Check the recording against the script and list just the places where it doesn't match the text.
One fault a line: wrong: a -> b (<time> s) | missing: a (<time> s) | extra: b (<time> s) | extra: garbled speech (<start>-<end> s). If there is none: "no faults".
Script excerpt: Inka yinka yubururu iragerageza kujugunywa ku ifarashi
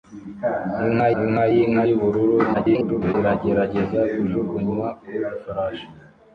extra: inka (1.2 s)
extra: garbled speech (2.5-3.1 s)